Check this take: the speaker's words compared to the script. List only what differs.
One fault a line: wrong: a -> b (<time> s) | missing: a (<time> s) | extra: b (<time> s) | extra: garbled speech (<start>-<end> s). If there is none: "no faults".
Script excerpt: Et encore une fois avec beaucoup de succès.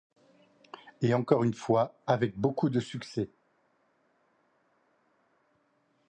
no faults